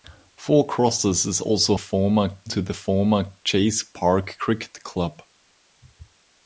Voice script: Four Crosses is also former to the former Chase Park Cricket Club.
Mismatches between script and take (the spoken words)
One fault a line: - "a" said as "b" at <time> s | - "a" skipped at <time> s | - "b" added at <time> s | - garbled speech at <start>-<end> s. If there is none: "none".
none